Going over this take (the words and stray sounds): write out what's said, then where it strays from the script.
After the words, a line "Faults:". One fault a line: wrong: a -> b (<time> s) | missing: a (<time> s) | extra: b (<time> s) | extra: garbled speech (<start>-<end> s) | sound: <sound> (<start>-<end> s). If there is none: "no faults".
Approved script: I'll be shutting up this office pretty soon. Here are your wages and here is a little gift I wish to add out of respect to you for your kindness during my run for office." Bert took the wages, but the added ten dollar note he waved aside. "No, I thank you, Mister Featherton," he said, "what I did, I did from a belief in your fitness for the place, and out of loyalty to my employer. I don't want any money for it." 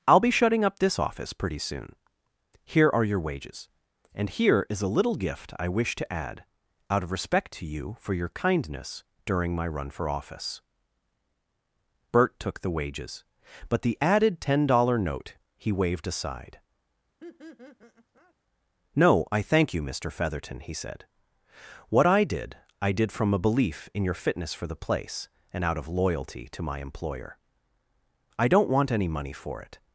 I'll be shutting up this office pretty soon. Here are your wages and here is a little gift I wish to add out of respect to you for your kindness during my run for office." Bert took the wages, but the added ten dollar note he waved aside. "No, I thank you, Mister Featherton," he said, "what I did, I did from a belief in your fitness for the place, and out of loyalty to my employer. I don't want any money for it."
Faults:
sound: laugh (17.2-18.3 s)